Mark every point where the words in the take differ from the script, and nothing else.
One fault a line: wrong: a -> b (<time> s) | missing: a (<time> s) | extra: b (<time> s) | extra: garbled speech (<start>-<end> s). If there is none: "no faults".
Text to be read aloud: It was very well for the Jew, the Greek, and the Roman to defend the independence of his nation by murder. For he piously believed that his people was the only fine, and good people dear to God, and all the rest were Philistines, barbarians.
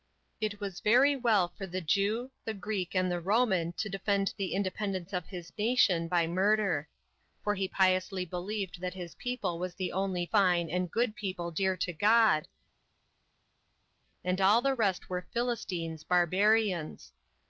no faults